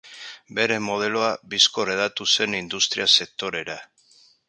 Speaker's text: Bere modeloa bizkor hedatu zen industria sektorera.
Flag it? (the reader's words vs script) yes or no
no